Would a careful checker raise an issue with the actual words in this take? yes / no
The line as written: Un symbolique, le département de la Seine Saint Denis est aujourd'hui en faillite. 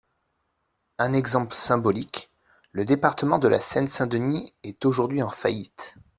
yes